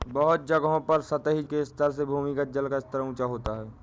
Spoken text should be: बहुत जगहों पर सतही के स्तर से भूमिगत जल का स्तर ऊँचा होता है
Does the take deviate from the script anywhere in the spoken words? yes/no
no